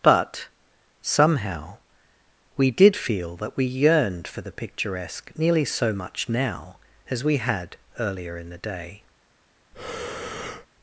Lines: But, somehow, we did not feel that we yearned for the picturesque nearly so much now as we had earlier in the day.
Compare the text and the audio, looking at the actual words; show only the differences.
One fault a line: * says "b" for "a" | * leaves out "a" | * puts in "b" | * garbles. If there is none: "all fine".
* leaves out "not"